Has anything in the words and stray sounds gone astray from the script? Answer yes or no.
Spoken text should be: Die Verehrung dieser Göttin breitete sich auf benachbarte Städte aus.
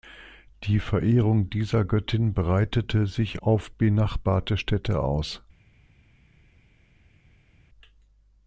no